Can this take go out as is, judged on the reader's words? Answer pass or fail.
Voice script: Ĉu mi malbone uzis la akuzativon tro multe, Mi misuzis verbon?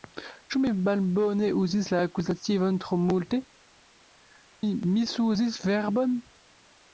pass